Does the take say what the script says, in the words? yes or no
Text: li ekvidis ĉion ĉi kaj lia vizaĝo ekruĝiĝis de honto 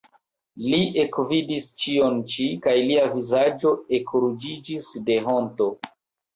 yes